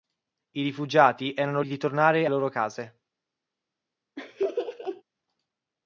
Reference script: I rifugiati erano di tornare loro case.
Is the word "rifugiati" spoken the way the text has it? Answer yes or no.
yes